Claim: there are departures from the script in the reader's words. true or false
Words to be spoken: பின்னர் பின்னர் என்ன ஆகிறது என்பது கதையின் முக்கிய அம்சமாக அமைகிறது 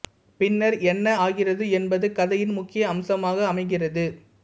true